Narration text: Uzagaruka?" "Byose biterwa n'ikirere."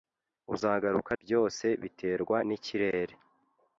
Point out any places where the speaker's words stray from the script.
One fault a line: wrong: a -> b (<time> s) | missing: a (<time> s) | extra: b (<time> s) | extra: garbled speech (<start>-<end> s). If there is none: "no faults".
no faults